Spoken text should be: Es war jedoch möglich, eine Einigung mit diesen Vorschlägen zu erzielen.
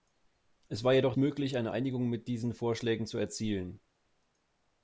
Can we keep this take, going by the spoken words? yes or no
yes